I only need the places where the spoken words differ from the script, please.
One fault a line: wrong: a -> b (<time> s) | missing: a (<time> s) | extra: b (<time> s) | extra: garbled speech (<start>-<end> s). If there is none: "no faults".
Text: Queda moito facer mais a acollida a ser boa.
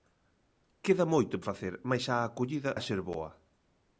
no faults